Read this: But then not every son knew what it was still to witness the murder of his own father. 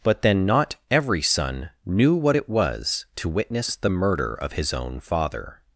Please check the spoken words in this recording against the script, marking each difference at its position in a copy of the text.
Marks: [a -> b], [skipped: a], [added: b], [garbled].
But then not every son knew what it was [skipped: still] to witness the murder of his own father.